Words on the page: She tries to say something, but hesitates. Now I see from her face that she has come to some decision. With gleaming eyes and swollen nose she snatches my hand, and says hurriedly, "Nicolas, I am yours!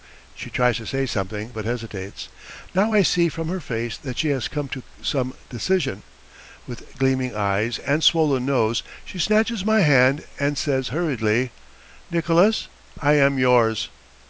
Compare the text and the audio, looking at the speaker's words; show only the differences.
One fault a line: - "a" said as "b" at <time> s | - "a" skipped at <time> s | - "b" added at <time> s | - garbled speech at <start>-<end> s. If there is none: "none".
none